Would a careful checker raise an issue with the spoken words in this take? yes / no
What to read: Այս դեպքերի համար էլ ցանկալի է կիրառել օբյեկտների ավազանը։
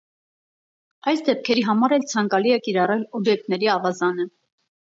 no